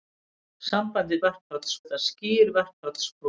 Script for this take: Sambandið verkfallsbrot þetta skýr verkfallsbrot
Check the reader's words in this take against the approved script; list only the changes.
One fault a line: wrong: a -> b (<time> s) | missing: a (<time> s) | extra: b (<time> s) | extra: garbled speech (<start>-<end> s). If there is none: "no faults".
no faults